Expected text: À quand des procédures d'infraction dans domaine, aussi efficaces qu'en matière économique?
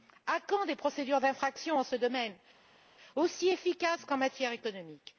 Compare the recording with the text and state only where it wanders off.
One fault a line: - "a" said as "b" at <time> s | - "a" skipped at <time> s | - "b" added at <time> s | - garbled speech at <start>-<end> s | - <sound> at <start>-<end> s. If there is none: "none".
- "ce" added at 1.8 s